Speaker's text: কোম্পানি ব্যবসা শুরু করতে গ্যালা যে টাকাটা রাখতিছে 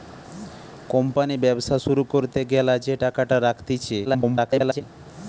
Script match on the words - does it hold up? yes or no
no